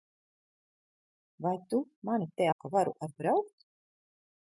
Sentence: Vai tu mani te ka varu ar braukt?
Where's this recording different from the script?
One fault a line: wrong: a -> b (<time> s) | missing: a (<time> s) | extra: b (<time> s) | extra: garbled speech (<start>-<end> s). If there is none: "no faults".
no faults